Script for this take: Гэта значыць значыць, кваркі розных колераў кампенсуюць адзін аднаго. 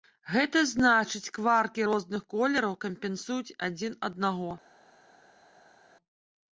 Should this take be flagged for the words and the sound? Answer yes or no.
yes